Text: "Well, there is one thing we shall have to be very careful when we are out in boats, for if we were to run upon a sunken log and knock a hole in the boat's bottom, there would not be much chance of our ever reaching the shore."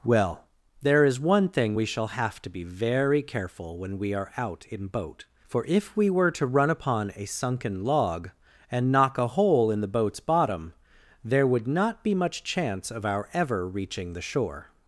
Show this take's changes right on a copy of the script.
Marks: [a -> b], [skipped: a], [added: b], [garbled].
"Well, there is one thing we shall have to be very careful when we are out in [boats, -> boat] for if we were to run upon a sunken log and knock a hole in the boat's bottom, there would not be much chance of our ever reaching the shore."